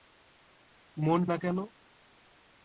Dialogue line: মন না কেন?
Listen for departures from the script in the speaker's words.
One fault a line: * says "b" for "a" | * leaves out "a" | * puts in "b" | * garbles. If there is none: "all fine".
all fine